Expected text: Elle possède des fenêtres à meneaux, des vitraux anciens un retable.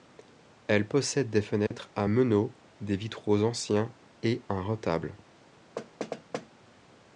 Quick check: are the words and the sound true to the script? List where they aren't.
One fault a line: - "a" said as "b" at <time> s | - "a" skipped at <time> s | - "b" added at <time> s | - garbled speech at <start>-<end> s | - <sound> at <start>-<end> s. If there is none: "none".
- dropout at 1.7-1.7 s
- "et" added at 4.2 s
- thud at 5.8-6.5 s